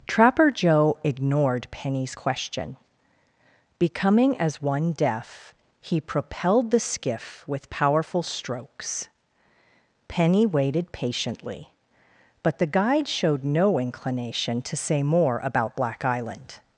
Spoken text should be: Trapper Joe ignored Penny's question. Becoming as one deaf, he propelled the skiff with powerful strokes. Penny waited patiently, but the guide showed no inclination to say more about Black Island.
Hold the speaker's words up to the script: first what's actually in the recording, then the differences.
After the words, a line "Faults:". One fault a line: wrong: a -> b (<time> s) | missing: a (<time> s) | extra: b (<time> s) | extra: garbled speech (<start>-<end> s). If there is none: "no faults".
Trapper Joe ignored Penny's question. Becoming as one deaf, he propelled the skiff with powerful strokes. Penny waited patiently, but the guide showed no inclination to say more about Black Island.
Faults:
no faults